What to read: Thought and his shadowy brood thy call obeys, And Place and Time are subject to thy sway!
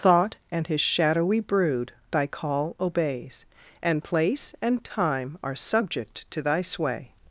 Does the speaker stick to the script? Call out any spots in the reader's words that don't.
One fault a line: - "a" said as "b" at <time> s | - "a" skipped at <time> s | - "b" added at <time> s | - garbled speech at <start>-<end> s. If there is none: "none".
none